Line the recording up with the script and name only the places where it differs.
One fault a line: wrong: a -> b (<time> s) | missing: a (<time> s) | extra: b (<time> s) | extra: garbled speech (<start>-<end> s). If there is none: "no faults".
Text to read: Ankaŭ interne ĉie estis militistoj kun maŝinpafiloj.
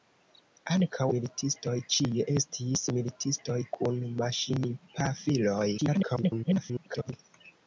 wrong: interne -> militistoj (1.1 s)
extra: garbled speech (5.8-7.1 s)